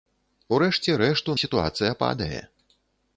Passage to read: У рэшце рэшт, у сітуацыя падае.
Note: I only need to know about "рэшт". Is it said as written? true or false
true